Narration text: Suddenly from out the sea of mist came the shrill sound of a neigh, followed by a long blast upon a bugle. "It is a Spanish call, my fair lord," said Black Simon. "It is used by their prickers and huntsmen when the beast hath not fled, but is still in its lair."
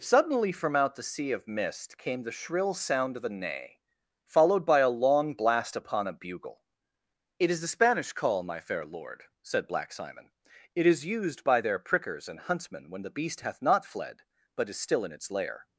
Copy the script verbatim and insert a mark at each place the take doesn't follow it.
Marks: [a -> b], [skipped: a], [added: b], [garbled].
Suddenly from out the sea of mist came the shrill sound of a neigh, followed by a long blast upon a bugle. "It is [a -> the] Spanish call, my fair lord," said Black Simon. "It is used by their prickers and huntsmen when the beast hath not fled, but is still in its lair."